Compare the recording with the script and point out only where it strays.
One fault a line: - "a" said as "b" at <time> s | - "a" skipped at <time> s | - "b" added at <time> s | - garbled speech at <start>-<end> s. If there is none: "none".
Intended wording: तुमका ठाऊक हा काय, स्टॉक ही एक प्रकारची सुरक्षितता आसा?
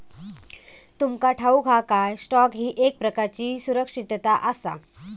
none